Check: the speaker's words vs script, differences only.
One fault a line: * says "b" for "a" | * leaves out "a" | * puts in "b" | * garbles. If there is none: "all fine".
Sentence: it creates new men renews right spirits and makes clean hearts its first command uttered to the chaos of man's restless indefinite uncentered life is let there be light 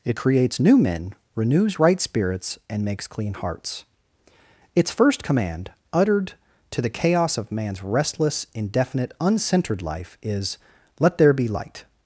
all fine